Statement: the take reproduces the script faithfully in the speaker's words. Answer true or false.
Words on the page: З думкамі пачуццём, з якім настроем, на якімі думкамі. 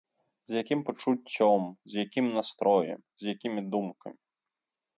false